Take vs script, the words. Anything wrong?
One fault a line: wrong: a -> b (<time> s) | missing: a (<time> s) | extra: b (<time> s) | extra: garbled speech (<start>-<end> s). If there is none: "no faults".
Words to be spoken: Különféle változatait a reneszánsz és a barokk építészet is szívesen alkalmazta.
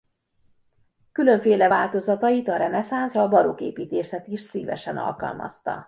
missing: és (3.1 s)